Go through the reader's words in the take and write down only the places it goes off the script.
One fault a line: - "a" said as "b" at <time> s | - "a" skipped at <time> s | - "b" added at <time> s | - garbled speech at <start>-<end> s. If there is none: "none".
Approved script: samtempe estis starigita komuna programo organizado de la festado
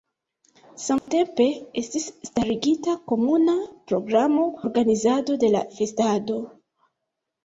none